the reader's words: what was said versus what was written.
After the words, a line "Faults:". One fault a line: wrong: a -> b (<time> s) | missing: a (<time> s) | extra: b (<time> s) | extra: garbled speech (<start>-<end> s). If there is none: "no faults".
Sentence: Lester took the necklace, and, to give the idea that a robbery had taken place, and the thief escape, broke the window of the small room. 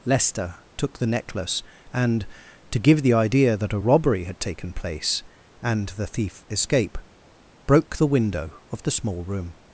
Lester took the necklace, and, to give the idea that a robbery had taken place, and the thief escape, broke the window of the small room.
Faults:
no faults